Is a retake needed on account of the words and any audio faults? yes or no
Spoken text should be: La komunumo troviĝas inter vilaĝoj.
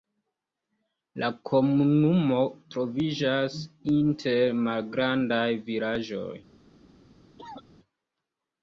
yes